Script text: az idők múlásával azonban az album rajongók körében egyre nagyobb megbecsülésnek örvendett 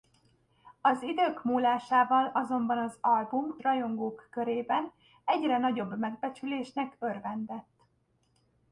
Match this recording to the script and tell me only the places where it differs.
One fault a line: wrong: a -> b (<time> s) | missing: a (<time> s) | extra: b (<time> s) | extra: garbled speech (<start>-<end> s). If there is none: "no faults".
no faults